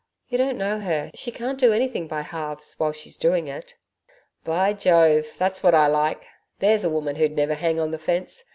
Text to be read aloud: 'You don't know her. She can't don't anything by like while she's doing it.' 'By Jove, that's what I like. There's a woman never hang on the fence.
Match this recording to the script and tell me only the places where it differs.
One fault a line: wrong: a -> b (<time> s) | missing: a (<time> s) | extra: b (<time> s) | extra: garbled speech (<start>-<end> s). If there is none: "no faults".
wrong: don't -> do (1.6 s)
wrong: like -> halves (2.2 s)
extra: who'd (7.2 s)